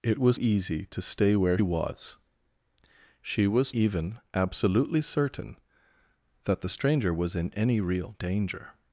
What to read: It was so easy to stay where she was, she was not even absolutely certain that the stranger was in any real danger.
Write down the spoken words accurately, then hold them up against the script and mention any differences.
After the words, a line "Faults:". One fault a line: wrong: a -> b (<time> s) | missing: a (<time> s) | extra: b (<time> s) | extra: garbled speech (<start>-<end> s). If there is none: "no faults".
It was easy to stay where was, she was even absolutely certain that the stranger was in any real danger.
Faults:
missing: so (0.4 s)
missing: she (1.6 s)
missing: not (3.8 s)